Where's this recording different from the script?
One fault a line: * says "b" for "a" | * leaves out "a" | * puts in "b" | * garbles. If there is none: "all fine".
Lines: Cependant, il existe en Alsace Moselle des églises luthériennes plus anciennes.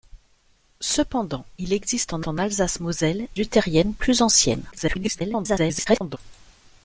* puts in "en"
* leaves out "des églises"
* garbles